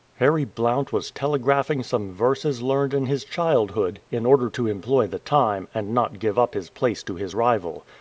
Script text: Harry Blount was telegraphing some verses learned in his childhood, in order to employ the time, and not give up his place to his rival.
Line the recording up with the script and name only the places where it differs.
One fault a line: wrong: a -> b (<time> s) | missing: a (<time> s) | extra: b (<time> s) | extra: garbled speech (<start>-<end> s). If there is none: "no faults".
no faults